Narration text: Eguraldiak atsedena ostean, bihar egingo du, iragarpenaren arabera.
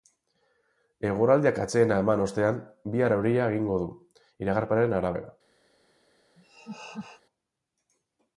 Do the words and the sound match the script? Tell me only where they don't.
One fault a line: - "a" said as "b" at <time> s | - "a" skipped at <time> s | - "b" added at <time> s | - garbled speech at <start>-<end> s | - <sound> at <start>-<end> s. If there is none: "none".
- "eman" added at 2.0 s
- "euria" added at 3.2 s
- laugh at 6.4-7.2 s